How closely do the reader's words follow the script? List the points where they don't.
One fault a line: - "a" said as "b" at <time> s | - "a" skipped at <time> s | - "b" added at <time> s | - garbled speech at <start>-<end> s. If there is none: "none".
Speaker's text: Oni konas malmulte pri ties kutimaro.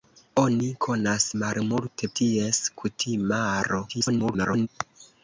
- "pri" skipped at 2.1 s
- garbled speech at 3.9-4.7 s